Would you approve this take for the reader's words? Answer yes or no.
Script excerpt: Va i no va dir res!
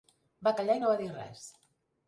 no